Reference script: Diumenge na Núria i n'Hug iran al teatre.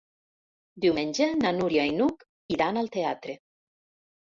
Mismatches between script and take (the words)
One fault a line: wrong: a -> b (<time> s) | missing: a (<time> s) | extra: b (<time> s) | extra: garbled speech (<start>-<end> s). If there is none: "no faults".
no faults